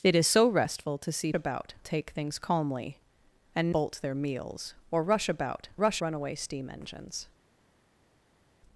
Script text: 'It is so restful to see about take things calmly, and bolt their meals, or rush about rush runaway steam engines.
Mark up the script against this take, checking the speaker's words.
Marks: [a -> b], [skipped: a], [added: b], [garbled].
'It is so restful to see about take things calmly, and bolt their meals, or rush about rush runaway steam engines.